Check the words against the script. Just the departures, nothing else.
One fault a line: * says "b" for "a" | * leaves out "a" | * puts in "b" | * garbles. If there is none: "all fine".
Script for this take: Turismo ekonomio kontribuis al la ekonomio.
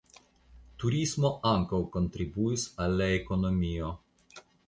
* says "ankaŭ" for "ekonomio"